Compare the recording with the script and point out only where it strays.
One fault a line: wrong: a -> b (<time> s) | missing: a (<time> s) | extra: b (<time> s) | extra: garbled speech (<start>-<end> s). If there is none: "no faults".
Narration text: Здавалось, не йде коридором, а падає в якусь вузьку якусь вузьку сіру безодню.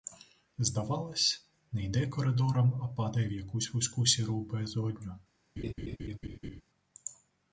missing: якусь вузьку (4.1 s)